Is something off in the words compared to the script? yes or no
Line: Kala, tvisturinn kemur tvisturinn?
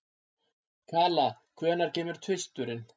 yes